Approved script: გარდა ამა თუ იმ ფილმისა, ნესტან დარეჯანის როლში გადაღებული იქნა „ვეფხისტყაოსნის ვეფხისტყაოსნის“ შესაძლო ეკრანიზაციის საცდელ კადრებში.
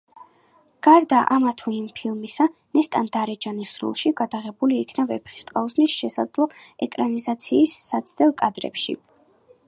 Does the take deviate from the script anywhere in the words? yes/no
yes